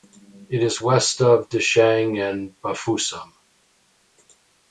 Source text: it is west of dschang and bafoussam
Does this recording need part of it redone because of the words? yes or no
no